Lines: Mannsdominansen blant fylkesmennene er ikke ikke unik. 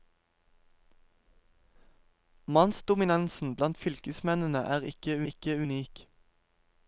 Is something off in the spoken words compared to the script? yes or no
no